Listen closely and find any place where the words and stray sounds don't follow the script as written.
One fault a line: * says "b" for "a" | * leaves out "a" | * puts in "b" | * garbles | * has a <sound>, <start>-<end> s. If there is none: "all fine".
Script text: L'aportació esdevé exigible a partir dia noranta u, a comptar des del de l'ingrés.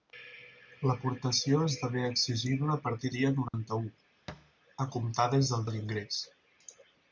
* has a dropout, 3.5-3.5 s
* has a thud, 4.3-4.5 s